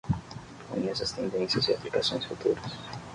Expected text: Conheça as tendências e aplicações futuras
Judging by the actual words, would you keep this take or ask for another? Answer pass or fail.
pass